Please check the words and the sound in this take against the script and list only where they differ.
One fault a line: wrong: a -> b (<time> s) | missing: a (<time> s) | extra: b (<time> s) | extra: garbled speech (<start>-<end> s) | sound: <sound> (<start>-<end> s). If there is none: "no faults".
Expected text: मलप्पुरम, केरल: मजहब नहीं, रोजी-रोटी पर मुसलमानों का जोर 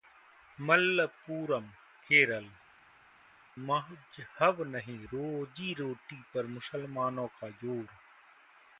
no faults